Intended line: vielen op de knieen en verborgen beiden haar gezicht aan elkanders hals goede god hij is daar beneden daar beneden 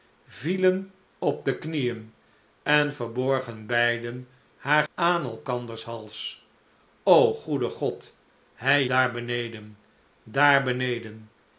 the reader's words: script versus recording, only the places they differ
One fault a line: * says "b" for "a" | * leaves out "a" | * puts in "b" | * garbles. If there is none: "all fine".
* leaves out "gezicht"
* leaves out "is"